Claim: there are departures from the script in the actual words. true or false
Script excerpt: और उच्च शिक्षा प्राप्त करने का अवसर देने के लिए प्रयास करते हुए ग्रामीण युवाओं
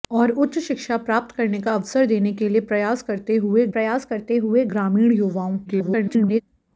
true